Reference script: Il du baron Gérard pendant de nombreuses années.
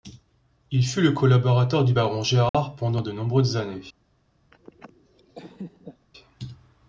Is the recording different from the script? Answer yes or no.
yes